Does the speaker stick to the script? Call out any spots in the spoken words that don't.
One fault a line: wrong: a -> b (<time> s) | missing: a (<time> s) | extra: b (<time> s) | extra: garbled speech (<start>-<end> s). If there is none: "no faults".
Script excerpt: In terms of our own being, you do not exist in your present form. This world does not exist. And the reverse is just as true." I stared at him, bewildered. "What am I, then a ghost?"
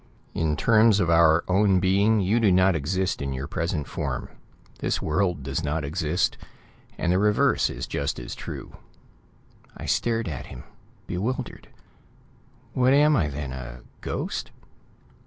no faults